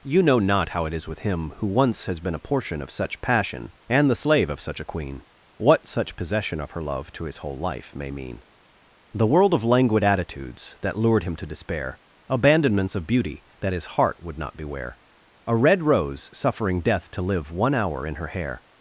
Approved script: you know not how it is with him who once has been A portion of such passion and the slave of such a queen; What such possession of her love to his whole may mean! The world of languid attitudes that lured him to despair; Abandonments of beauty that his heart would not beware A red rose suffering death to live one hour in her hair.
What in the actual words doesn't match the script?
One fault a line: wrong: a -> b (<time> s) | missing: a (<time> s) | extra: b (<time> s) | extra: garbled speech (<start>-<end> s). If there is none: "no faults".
extra: life (7.6 s)